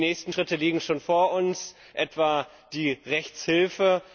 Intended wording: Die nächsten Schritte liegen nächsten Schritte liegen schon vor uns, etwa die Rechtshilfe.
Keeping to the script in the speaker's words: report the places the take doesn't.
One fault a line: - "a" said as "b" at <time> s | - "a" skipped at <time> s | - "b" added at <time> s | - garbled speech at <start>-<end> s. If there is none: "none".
- "nächsten Schritte liegen" skipped at 0.8 s